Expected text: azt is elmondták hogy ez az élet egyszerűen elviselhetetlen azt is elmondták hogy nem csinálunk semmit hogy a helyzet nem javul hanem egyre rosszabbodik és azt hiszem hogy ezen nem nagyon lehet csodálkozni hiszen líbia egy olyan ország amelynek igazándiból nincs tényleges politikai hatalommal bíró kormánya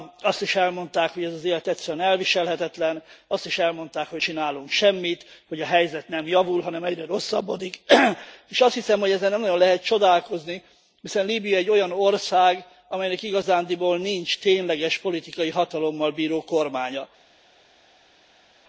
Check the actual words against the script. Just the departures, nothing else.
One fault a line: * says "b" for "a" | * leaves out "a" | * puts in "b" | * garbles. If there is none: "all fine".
* leaves out "nem"